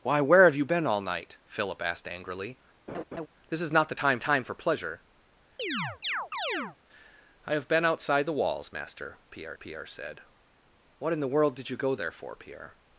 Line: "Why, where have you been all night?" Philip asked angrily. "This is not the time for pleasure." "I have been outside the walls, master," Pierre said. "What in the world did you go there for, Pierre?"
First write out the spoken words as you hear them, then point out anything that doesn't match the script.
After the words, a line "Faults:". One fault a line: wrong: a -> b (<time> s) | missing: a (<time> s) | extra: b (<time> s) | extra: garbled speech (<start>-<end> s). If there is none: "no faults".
"Why, where have you been all night?" Philip asked angrily. "This is not the time time for pleasure." "I have been outside the walls, master," Pierre Pierre said. "What in the world did you go there for, Pierre?"
Faults:
extra: time (4.2 s)
extra: Pierre (9.6 s)